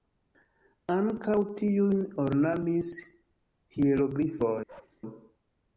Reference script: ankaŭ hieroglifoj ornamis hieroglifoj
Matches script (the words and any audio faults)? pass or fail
fail